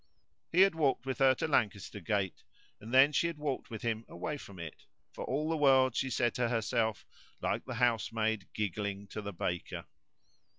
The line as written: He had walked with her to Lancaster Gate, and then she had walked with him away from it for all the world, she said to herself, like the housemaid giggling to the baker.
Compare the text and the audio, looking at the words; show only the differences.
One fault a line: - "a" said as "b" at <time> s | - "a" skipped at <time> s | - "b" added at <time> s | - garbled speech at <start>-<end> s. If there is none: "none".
none